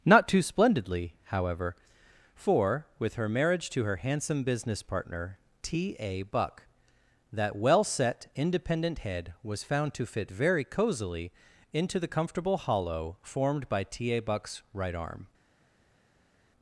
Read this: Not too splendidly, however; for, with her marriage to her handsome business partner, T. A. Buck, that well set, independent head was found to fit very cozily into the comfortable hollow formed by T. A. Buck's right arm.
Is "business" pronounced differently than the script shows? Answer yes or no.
no